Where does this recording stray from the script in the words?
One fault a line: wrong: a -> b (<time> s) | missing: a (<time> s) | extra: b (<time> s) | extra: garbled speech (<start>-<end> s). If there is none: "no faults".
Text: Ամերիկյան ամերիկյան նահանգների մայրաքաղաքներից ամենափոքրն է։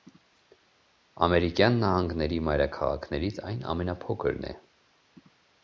missing: ամերիկյան (1.8 s)
extra: այն (3.5 s)